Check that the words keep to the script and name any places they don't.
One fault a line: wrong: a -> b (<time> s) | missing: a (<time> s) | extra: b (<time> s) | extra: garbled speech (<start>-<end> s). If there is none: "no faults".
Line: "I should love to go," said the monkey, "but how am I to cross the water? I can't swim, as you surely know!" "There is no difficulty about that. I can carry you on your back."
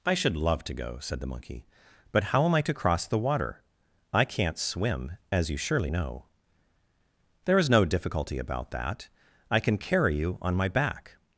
wrong: your -> my (10.5 s)